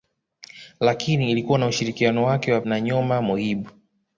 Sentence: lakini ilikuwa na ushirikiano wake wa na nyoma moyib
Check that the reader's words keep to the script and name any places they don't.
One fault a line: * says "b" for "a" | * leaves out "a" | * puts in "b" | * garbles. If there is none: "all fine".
all fine